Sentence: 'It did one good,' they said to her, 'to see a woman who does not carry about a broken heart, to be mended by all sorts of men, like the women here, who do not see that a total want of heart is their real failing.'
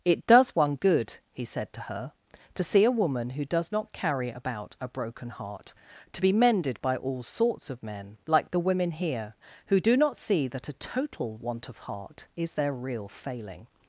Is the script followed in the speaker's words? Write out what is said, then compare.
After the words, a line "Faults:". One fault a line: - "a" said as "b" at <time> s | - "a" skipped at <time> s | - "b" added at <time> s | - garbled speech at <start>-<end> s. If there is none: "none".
'It does one good,' he said to her, 'to see a woman who does not carry about a broken heart, to be mended by all sorts of men, like the women here, who do not see that a total want of heart is their real failing.'
Faults:
- "did" said as "does" at 0.2 s
- "they" said as "he" at 1.3 s